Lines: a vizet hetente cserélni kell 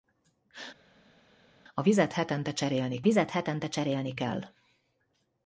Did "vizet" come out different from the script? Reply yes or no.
no